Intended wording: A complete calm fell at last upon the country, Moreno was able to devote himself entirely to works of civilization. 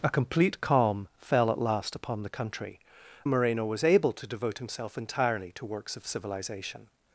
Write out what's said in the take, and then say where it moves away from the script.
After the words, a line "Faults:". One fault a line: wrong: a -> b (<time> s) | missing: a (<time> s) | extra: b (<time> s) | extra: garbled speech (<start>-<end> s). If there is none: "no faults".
A complete calm fell at last upon the country, Moreno was able to devote himself entirely to works of civilization.
Faults:
no faults